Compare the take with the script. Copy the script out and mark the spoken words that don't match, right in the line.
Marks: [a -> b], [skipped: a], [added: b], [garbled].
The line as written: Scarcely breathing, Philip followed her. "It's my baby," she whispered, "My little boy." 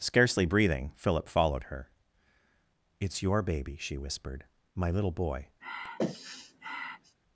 Scarcely breathing, Philip followed her. "It's [my -> your] baby," she whispered, "My little boy."